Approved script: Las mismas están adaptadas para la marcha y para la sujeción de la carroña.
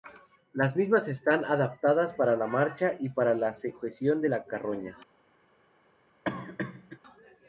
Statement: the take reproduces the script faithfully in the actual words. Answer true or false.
true